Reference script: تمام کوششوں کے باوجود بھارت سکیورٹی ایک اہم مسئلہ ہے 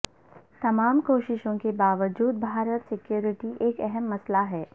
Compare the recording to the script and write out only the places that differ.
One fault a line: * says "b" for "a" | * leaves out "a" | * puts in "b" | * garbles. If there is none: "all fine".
all fine